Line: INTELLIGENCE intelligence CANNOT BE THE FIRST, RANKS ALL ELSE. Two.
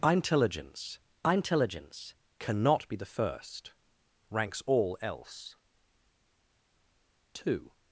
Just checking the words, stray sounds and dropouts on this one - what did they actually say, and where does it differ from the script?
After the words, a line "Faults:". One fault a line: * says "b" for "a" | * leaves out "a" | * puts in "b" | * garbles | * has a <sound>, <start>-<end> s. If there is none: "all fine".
INTELLIGENCE intelligence CANNOT BE THE FIRST, RANKS ALL ELSE. Two.
Faults:
all fine